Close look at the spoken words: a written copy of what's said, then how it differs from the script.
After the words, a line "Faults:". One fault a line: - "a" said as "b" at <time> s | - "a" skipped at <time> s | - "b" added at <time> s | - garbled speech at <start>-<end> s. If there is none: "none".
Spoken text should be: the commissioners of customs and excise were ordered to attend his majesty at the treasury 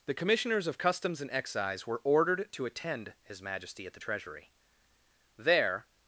the commissioners of customs and excise were ordered to attend his majesty at the treasury there
Faults:
- "there" added at 5.4 s